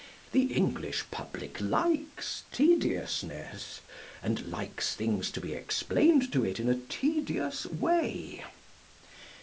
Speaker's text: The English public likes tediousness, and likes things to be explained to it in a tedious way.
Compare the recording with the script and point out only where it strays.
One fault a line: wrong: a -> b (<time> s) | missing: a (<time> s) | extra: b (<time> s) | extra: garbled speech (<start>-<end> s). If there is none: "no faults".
no faults